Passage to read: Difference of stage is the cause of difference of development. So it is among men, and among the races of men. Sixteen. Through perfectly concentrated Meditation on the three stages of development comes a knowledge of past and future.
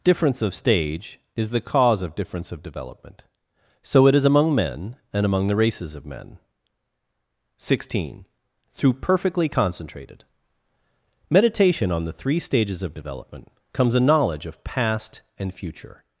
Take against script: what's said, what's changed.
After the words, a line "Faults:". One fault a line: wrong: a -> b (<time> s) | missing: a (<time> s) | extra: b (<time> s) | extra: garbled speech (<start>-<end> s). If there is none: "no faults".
Difference of stage is the cause of difference of development. So it is among men, and among the races of men. Sixteen. Through perfectly concentrated Meditation on the three stages of development comes a knowledge of past and future.
Faults:
no faults